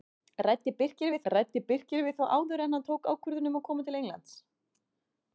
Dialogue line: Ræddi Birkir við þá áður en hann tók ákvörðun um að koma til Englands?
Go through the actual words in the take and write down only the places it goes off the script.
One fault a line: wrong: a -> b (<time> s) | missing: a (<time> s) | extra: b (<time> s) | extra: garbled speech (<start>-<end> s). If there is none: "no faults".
extra: ræddi Birkir við (1.3 s)